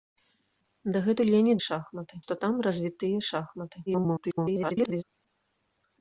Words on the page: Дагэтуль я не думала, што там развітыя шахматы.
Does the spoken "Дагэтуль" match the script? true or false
true